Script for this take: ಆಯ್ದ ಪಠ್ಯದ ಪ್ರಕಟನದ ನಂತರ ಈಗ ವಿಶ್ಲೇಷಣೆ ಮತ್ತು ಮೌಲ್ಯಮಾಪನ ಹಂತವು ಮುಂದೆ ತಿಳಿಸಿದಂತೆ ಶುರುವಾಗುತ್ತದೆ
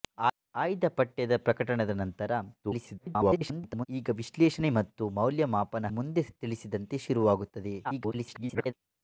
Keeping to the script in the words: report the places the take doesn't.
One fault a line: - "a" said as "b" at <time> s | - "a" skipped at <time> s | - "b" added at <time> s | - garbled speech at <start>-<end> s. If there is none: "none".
- garbled speech at 2.6-3.9 s
- "ಹಂತವು" skipped at 5.9 s
- garbled speech at 7.8-8.7 s